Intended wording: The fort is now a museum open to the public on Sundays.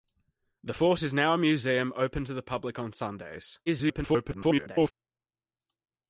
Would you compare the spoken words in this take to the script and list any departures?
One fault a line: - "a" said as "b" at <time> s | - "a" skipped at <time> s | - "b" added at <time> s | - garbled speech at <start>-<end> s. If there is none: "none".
- garbled speech at 3.7-4.9 s